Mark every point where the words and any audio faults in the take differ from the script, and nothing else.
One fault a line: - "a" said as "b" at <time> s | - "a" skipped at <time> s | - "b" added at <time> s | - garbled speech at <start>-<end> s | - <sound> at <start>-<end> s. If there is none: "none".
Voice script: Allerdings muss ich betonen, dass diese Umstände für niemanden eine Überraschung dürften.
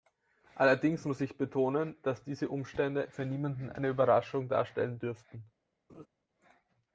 - "darstellen" added at 4.5 s
- laugh at 5.9-6.1 s